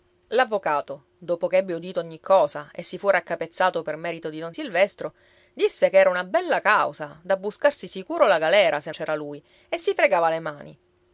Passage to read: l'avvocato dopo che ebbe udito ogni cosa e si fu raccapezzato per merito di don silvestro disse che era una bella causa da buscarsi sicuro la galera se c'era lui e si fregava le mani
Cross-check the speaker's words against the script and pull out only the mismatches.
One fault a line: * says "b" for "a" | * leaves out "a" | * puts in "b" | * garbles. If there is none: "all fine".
all fine